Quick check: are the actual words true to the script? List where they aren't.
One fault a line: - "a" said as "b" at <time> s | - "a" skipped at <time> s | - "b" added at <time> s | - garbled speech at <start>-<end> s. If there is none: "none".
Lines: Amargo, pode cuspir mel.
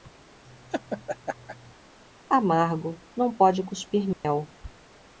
- "não" added at 3.2 s